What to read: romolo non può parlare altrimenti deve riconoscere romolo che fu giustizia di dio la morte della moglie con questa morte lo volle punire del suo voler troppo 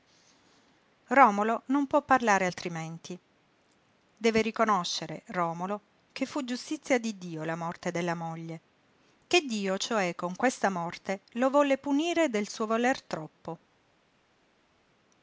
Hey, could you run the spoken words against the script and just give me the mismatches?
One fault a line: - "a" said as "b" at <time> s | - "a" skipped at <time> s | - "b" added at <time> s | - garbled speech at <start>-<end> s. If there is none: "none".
- "che dio cioè" added at 9.3 s